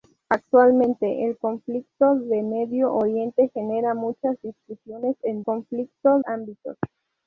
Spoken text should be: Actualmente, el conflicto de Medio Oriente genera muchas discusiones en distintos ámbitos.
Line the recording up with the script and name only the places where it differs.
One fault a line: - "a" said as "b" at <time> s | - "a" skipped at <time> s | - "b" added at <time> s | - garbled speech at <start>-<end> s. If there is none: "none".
- "distintos" said as "conflicto" at 5.4 s